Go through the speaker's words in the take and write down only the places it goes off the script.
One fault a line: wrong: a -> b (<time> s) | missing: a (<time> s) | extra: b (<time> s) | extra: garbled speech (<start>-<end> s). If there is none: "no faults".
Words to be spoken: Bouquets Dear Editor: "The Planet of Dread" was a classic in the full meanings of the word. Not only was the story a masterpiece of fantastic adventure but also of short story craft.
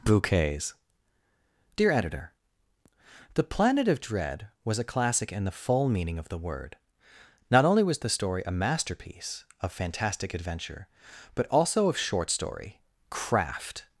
wrong: meanings -> meaning (5.9 s)